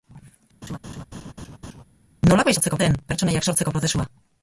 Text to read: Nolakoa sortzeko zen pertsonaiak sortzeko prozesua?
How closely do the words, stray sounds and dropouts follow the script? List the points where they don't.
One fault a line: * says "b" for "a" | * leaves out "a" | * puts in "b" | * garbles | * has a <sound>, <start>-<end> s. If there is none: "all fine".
* has a laugh, 0.6-1.8 s